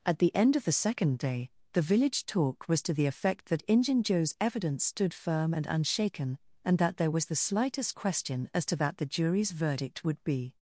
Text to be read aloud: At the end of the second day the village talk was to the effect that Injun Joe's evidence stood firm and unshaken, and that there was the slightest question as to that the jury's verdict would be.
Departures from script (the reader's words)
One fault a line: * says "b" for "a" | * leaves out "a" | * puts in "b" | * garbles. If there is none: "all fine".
all fine